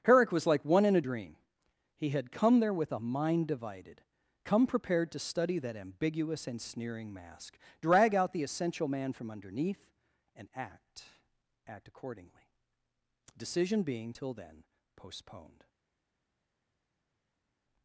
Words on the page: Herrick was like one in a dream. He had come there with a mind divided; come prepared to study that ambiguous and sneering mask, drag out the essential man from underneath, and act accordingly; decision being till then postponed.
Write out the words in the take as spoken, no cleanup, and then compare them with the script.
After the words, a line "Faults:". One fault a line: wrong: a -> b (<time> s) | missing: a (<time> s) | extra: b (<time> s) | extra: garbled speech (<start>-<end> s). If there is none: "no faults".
Herrick was like one in a dream. He had come there with a mind divided; come prepared to study that ambiguous and sneering mask, drag out the essential man from underneath, and act act accordingly; decision being till then postponed.
Faults:
extra: act (11.7 s)